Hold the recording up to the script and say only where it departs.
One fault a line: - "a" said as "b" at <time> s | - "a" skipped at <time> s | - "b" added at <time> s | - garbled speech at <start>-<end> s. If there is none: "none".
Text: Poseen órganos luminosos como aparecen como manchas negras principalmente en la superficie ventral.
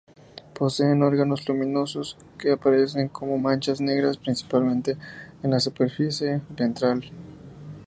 - "como" said as "que" at 2.4 s